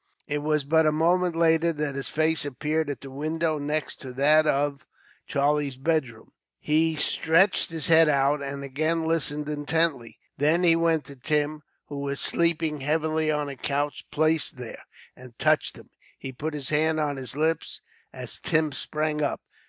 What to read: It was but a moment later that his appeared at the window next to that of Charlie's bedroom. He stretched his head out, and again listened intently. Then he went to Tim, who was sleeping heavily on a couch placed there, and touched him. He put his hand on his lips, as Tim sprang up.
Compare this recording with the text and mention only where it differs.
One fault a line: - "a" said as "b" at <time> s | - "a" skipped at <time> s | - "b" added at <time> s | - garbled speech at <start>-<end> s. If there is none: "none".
- "face" added at 2.1 s